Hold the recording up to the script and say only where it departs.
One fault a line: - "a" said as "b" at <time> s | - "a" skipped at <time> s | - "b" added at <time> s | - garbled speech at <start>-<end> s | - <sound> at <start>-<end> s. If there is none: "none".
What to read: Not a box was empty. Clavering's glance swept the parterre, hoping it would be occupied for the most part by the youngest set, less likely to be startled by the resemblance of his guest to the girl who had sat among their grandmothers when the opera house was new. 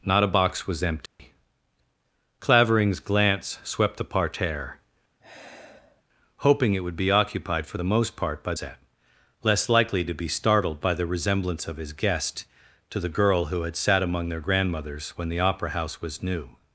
- dropout at 1.1-1.2 s
- sigh at 5.2-6.0 s
- "the youngest" skipped at 8.5 s